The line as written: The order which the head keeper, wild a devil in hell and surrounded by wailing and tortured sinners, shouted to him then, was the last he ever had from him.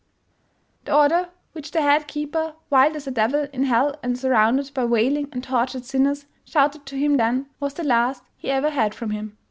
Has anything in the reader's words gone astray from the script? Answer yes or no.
yes